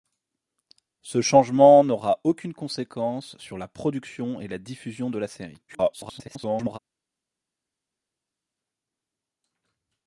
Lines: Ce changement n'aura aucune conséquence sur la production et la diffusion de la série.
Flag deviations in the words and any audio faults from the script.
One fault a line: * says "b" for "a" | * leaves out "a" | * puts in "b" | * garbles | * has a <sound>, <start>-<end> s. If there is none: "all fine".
* garbles